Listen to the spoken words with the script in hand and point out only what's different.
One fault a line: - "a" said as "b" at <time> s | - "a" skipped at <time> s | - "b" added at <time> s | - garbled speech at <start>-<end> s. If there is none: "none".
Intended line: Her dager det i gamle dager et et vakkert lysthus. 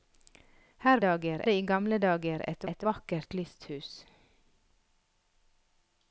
none